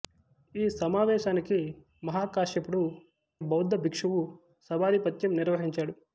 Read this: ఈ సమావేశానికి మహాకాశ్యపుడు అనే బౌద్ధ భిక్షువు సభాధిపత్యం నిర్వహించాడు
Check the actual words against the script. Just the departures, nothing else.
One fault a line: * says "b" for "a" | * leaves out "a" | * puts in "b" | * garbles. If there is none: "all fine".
* leaves out "అనే"